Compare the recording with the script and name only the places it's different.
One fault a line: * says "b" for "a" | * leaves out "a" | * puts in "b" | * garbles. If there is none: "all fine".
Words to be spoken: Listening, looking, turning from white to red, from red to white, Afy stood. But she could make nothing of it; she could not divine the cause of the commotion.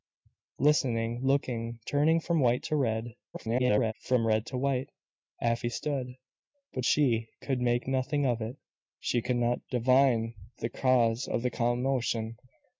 * garbles